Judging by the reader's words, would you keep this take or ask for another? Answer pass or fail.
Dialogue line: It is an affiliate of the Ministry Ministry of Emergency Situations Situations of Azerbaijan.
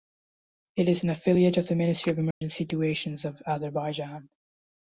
fail